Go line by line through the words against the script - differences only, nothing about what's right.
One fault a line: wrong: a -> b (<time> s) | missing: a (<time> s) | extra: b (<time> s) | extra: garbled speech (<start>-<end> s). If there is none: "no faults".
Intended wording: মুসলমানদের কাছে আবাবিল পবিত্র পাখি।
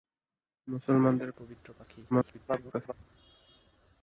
missing: কাছে আবাবিল (1.3 s)
extra: garbled speech (2.1-2.9 s)